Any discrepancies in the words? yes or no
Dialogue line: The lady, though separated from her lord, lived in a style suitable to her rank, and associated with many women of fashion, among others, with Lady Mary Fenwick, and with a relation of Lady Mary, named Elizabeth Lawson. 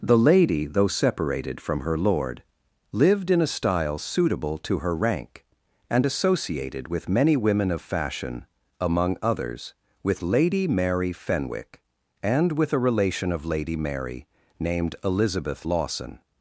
no